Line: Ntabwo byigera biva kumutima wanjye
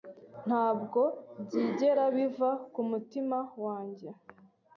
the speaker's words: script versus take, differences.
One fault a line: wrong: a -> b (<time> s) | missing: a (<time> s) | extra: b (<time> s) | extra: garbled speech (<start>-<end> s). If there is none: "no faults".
no faults